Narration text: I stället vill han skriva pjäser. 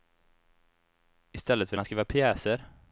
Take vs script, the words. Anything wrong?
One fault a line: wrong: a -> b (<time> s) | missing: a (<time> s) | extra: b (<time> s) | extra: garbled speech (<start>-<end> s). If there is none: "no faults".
no faults